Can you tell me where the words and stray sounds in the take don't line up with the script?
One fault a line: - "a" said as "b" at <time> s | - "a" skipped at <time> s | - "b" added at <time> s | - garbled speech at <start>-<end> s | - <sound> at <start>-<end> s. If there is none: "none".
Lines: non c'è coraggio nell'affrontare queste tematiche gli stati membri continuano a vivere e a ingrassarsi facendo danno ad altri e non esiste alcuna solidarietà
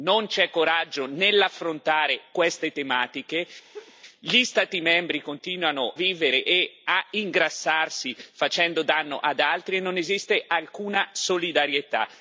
- laugh at 3.7-3.9 s
- "a" skipped at 5.9 s